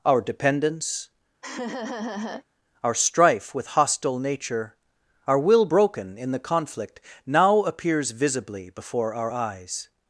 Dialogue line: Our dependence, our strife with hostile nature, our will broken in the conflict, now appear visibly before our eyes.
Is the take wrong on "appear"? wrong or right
wrong